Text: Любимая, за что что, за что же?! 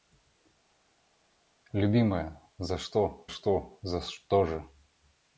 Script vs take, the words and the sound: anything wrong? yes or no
no